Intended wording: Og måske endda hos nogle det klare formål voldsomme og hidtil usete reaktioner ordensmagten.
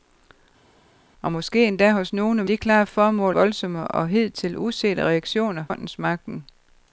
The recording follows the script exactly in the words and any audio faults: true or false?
true